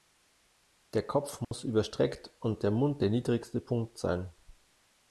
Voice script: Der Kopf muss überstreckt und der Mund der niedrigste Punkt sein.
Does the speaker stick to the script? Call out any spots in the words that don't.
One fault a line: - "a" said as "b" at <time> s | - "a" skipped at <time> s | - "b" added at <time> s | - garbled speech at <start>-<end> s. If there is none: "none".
none